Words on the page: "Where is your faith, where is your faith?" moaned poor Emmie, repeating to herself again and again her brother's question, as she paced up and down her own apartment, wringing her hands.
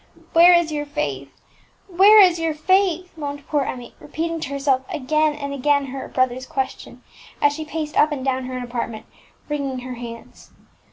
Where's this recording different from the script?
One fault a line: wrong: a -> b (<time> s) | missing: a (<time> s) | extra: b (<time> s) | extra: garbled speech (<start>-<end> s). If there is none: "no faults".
no faults